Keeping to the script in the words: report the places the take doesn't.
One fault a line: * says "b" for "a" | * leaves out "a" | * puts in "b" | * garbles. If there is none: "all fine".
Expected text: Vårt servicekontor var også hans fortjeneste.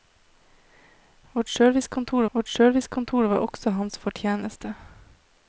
* puts in "vårt servicekontor"